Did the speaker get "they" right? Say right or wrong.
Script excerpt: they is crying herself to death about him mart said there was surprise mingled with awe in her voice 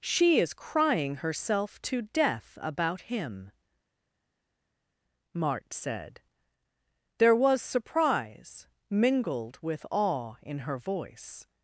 wrong